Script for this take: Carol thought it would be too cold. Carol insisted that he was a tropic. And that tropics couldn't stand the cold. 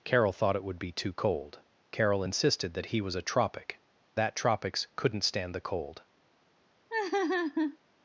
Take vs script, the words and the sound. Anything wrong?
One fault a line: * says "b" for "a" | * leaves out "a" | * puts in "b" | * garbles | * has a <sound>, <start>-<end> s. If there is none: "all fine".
* leaves out "And"
* has a laugh, 6.9-7.8 s